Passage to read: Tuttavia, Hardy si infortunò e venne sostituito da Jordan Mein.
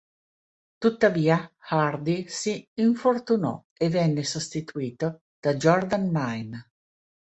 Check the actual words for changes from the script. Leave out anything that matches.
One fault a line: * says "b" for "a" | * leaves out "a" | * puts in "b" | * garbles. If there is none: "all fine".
all fine